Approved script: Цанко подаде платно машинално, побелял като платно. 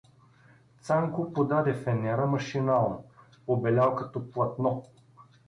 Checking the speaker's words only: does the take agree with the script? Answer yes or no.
no